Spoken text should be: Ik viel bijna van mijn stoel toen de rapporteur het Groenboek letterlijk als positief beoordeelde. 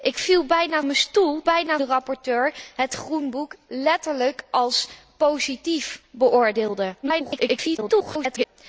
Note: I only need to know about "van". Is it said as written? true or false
false